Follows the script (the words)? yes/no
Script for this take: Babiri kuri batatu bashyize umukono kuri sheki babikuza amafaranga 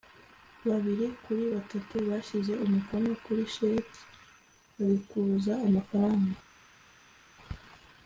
yes